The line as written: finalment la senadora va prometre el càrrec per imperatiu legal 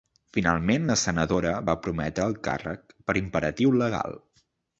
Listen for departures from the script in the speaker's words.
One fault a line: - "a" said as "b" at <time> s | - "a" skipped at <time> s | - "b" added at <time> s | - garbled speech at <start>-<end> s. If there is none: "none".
none